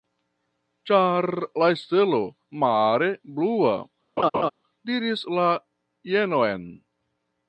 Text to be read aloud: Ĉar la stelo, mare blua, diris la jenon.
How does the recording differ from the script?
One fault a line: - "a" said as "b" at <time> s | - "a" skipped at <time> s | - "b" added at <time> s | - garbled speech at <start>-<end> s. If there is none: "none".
none